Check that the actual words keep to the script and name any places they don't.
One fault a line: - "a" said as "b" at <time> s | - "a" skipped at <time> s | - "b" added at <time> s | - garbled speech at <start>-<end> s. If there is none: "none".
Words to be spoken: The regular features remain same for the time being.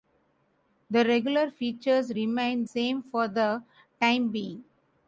none